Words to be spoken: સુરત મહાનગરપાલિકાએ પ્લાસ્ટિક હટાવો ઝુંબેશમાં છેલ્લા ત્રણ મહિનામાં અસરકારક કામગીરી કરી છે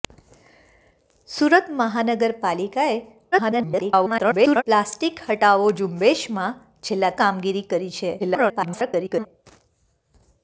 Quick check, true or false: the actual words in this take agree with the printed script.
false